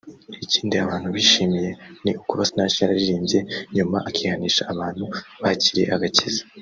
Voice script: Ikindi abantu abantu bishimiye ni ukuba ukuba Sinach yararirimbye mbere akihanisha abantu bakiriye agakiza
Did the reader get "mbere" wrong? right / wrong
wrong